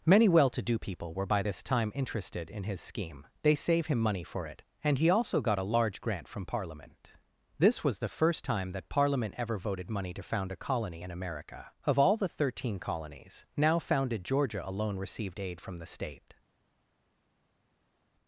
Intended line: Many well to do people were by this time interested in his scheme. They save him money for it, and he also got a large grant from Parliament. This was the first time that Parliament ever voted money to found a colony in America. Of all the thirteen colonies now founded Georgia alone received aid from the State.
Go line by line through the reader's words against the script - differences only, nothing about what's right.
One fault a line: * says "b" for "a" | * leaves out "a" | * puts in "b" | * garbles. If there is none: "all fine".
all fine